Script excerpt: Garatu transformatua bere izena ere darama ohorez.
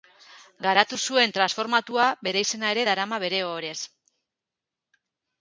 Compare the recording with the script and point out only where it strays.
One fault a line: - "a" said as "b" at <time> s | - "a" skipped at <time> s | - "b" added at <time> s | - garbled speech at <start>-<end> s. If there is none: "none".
- "zuen" added at 1.1 s
- "bere" added at 3.2 s